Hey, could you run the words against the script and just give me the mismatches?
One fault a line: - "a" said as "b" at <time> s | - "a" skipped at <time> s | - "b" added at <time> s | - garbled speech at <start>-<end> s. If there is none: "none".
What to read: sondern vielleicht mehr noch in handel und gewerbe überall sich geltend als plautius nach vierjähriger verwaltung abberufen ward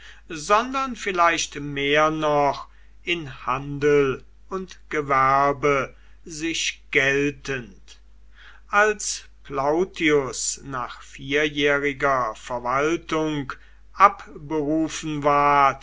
- "überall" skipped at 5.9 s